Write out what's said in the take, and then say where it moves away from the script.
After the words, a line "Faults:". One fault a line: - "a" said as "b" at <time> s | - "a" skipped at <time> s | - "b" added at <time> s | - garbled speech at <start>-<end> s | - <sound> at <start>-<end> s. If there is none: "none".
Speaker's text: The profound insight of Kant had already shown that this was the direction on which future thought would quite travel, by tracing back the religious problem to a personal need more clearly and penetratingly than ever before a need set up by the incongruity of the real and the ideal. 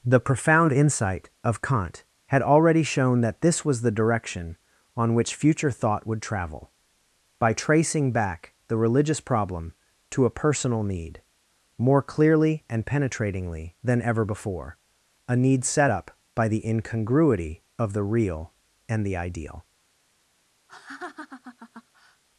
The profound insight of Kant had already shown that this was the direction on which future thought would travel, by tracing back the religious problem to a personal need more clearly and penetratingly than ever before a need set up by the incongruity of the real and the ideal.
Faults:
- "quite" skipped at 6.2 s
- laugh at 20.7-22.2 s